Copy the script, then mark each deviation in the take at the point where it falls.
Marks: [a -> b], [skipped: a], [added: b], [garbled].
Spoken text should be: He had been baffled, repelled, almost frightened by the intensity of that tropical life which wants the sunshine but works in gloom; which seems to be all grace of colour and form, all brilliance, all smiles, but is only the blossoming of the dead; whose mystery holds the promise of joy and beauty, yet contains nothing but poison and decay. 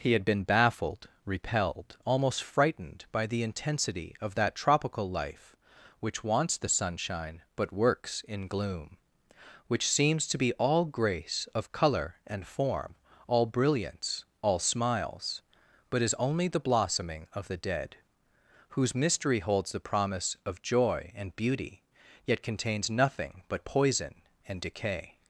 He had been baffled, repelled, almost frightened by the intensity of that tropical life which wants the sunshine but works in gloom; which seems to be all grace of colour and form, all brilliance, all smiles, but is only the blossoming of the dead; whose mystery holds the promise of joy and beauty, yet contains nothing but poison and decay.